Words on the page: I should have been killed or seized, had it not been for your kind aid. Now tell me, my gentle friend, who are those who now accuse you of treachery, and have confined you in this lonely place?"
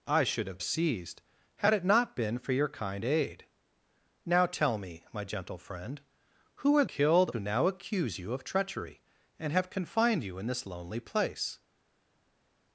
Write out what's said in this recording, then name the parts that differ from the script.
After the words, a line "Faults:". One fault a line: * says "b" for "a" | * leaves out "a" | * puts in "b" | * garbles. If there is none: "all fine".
I should have seized, had it not been for your kind aid. Now tell me, my gentle friend, who are killed who now accuse you of treachery, and have confined you in this lonely place?"
Faults:
* leaves out "been killed or"
* says "killed" for "those"